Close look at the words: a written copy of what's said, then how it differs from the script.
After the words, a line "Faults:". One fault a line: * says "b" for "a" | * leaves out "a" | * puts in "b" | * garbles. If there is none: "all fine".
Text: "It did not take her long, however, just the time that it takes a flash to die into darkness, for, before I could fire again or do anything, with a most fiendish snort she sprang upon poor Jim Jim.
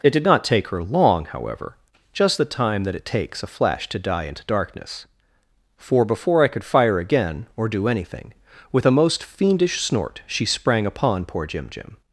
"It did not take her long, however, just the time that it takes a flash to die into darkness, for, before I could fire again or do anything, with a most fiendish snort she sprang upon poor Jim Jim.
Faults:
all fine